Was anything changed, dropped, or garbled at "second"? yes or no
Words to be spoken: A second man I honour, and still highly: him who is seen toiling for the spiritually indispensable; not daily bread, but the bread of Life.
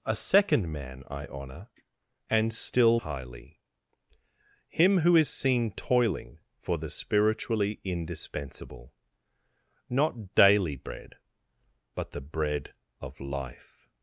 no